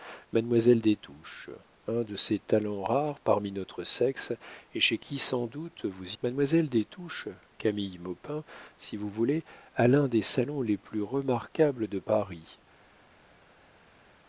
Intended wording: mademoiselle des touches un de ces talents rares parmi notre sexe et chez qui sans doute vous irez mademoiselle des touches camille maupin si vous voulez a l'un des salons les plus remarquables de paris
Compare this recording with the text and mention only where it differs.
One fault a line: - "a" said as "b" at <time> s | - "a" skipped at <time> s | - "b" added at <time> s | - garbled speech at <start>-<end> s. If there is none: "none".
- "irez" skipped at 6.2 s